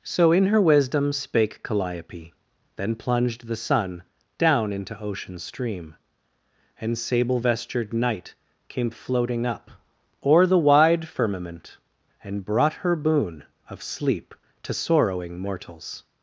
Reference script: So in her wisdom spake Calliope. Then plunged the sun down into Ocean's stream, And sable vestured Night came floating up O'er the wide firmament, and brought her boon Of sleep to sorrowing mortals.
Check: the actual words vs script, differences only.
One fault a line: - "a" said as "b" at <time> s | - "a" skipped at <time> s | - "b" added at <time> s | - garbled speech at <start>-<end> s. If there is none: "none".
none